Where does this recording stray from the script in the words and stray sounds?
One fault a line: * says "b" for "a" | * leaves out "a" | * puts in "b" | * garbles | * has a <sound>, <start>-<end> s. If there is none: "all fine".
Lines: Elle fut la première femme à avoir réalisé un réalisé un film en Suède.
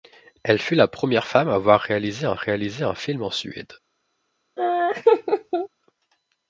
* has a laugh, 4.6-5.7 s